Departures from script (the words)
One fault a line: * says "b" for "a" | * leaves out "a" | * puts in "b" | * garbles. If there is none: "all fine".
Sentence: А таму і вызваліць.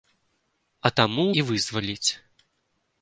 all fine